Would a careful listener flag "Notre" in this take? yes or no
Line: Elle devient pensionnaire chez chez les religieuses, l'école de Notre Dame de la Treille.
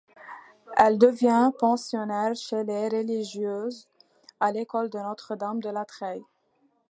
no